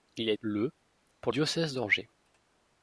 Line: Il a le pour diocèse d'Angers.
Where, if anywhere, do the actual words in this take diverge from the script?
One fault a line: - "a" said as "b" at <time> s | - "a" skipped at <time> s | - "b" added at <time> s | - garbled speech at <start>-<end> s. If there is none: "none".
none